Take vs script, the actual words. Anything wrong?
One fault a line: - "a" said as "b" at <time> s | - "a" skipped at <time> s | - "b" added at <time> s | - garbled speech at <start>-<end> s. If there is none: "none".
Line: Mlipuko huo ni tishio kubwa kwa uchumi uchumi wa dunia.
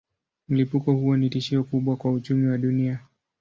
- "uchumi" skipped at 2.5 s